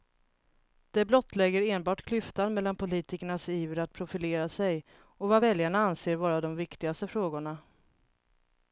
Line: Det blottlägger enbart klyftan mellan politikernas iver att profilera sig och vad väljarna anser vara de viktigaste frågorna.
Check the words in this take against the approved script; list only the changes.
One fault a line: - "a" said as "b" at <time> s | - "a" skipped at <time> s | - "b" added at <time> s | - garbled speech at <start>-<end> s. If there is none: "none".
none